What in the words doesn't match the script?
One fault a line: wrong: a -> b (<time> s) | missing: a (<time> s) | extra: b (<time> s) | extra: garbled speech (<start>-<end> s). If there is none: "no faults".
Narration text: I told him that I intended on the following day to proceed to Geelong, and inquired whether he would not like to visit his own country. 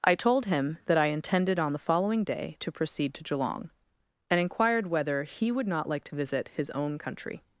no faults